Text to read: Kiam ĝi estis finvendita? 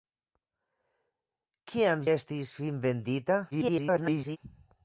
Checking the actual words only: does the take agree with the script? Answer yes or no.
no